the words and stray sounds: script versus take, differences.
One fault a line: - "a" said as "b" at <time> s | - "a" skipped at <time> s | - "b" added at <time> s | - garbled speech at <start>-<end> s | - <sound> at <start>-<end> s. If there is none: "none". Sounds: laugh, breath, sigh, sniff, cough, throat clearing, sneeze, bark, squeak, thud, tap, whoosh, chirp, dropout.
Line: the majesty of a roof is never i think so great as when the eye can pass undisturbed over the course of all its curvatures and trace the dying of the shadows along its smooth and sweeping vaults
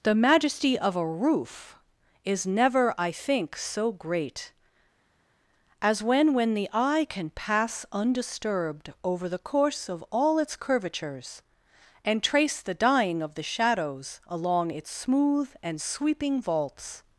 - "when" added at 6.3 s